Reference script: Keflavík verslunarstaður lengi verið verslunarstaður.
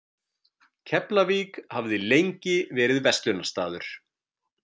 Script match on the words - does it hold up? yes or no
no